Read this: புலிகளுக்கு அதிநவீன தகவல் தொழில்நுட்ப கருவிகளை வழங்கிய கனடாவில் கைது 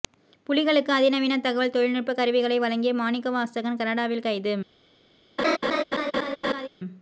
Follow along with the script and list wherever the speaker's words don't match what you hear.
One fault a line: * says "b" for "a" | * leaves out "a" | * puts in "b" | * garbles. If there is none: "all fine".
* puts in "மாணிக்கவாசகன்"